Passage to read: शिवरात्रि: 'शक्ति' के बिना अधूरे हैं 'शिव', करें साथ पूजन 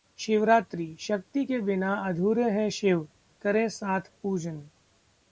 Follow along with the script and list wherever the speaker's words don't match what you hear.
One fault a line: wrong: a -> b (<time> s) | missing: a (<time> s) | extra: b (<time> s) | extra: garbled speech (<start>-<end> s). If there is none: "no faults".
no faults